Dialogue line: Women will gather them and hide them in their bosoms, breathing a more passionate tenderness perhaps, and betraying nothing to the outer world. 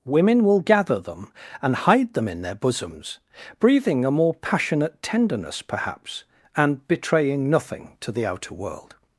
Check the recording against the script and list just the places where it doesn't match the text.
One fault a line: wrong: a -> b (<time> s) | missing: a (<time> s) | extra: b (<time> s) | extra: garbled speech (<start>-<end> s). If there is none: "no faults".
no faults